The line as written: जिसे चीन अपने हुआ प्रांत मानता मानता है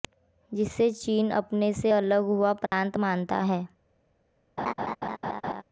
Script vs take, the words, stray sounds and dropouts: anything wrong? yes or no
yes